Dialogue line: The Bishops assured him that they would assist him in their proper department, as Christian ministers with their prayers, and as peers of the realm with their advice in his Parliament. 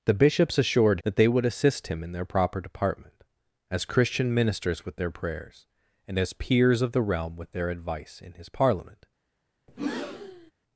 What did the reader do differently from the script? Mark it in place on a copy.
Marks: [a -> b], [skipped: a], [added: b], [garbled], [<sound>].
The Bishops assured [skipped: him] that they would assist him in their proper department, as Christian ministers with their prayers, and as peers of the realm with their advice in his Parliament. [breath]